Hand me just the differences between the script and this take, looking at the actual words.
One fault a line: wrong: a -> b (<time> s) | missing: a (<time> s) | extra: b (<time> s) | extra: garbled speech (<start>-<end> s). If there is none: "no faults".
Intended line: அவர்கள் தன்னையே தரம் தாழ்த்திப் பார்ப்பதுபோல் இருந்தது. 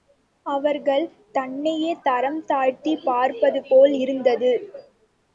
no faults